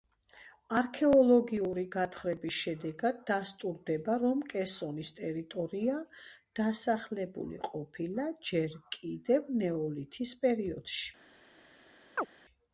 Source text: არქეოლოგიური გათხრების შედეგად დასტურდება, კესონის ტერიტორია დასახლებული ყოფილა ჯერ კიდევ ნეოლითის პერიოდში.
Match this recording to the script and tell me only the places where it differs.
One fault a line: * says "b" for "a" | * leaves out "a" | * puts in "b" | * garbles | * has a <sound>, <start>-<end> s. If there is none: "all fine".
* puts in "რომ"
* has a chirp, 12.2-12.3 s